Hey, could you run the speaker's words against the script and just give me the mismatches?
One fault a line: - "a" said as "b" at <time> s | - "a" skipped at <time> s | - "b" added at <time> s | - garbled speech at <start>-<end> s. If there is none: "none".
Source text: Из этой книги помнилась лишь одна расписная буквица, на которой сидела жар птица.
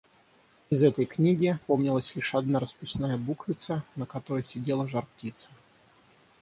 none